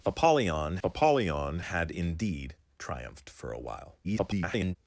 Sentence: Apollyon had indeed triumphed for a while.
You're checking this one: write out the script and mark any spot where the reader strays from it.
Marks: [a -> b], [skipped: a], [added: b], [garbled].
Apollyon [added: apollyon] had indeed triumphed for a while. [garbled]